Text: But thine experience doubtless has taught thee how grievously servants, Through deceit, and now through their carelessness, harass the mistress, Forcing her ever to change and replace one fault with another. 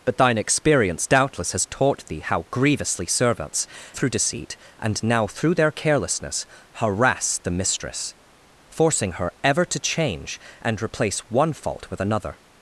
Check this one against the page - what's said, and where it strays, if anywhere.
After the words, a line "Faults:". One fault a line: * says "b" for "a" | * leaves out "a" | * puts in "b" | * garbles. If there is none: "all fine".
But thine experience doubtless has taught thee how grievously servants, Through deceit, and now through their carelessness, harass the mistress, Forcing her ever to change and replace one fault with another.
Faults:
all fine